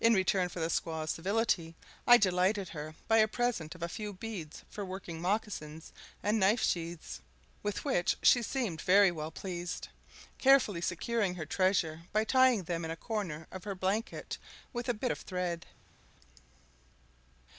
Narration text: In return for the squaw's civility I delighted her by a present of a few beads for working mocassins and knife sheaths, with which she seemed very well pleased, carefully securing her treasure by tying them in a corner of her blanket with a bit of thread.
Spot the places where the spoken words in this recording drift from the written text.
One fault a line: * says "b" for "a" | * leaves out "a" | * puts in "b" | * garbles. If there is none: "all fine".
all fine